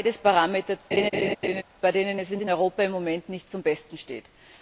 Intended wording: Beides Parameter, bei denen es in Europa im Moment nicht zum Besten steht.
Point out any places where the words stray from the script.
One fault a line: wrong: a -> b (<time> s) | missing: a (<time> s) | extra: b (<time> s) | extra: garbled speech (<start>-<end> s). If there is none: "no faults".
extra: in (2.4 s)